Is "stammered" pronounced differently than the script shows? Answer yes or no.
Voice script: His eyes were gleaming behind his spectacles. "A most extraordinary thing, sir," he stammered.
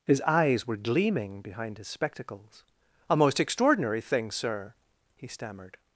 no